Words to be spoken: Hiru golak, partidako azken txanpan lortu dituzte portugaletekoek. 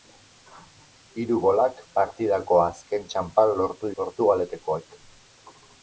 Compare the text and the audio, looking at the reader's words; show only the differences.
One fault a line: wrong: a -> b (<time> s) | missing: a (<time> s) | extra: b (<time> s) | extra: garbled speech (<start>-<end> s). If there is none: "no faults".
missing: dituzte (4.0 s)